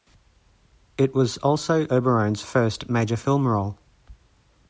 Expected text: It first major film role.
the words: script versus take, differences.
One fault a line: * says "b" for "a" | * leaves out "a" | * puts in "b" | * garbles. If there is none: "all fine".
* puts in "was also Oberon's"